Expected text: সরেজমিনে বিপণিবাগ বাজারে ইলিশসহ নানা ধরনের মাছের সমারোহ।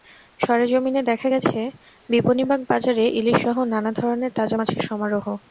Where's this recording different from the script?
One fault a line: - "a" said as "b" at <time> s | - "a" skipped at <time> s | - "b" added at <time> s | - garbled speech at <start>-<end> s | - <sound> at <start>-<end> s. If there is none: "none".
- "দেখা গেছে" added at 1.0 s
- "তাজা" added at 4.4 s